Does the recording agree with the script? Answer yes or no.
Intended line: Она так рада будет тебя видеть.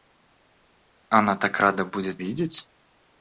no